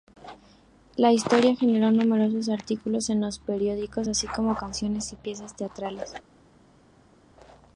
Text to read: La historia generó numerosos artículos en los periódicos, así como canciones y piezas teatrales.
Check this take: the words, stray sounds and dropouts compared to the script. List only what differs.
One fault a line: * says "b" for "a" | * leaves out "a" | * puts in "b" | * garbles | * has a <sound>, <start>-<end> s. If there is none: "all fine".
all fine